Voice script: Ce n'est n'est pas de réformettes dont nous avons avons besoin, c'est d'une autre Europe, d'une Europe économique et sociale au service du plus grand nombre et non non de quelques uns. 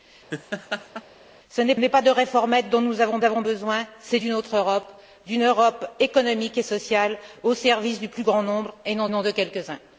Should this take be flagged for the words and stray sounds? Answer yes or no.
yes